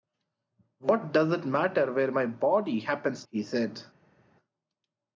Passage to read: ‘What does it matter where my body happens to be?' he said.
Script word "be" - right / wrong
wrong